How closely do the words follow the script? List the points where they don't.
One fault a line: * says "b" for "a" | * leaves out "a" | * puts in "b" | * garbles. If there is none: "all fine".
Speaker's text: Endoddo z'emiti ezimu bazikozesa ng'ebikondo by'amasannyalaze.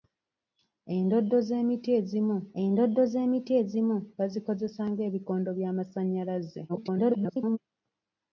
* puts in "endoddo z'emiti ezimu"
* garbles